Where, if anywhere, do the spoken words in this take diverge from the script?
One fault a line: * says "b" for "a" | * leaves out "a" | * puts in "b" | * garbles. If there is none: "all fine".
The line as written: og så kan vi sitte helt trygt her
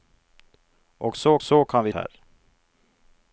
* puts in "så"
* leaves out "sitte helt trygt"